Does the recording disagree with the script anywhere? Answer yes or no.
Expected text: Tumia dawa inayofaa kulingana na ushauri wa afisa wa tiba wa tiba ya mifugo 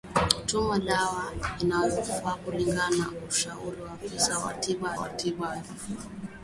no